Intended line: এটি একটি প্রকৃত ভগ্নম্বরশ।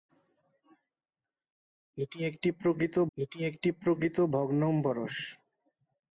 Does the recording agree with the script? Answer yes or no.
no